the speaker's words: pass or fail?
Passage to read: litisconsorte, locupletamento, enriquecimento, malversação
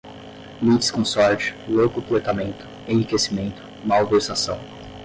pass